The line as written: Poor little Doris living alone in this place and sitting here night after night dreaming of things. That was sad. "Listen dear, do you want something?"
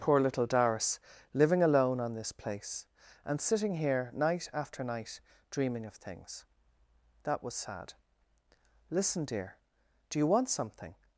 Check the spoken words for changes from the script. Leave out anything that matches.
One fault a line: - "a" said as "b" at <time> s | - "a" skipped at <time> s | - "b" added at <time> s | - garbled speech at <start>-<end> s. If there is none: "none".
- "in" said as "on" at 2.0 s